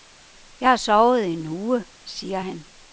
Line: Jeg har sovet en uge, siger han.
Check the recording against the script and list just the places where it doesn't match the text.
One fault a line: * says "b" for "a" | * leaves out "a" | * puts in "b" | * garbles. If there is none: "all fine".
all fine